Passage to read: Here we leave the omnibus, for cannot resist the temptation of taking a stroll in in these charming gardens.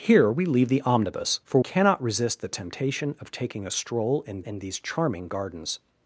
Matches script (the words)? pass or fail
pass